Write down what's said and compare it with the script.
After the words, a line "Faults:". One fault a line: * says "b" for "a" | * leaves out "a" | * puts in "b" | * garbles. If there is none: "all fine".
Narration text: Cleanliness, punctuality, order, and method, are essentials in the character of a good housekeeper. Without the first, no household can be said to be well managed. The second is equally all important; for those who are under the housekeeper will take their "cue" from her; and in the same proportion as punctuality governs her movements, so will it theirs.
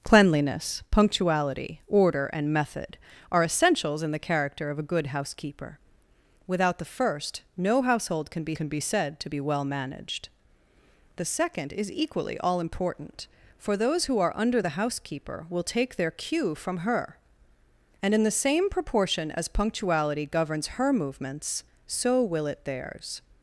Cleanliness, punctuality, order, and method, are essentials in the character of a good housekeeper. Without the first, no household can be can be said to be well managed. The second is equally all important; for those who are under the housekeeper will take their "cue" from her; and in the same proportion as punctuality governs her movements, so will it theirs.
Faults:
* puts in "can be"